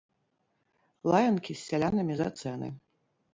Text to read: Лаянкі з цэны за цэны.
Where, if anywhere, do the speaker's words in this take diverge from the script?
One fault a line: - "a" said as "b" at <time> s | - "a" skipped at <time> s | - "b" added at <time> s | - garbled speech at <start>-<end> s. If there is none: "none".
- "цэны" said as "сялянамі" at 1.7 s